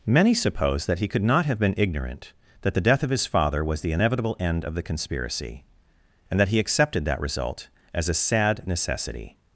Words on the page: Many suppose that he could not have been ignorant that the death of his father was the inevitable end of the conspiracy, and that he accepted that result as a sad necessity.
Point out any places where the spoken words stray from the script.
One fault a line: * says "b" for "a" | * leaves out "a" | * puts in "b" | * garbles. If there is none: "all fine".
all fine